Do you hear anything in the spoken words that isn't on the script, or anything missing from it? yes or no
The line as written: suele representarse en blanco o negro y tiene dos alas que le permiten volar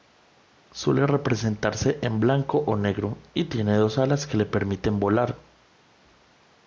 no